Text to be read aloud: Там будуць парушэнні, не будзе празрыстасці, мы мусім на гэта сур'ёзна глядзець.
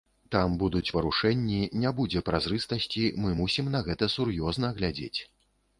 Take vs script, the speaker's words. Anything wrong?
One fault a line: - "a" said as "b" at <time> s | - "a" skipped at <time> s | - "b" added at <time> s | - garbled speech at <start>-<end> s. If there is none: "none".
none